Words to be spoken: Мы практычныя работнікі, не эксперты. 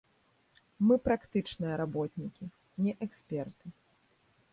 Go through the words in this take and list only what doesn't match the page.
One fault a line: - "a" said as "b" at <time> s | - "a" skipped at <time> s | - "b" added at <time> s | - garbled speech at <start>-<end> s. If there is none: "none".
none